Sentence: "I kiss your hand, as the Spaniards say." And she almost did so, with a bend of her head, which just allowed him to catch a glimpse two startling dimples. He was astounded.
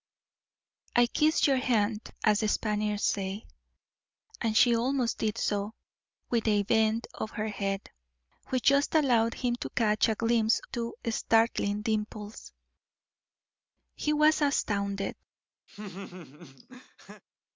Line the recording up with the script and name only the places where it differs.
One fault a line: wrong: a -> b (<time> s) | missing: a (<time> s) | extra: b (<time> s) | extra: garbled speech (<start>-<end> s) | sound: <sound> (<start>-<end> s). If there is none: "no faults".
sound: laugh (15.7-17.2 s)